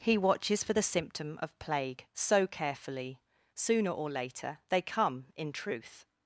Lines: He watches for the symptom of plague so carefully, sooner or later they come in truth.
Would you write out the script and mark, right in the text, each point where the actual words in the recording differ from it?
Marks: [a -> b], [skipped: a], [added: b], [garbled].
He watches for the symptom of plague so carefully, sooner or later they come in truth.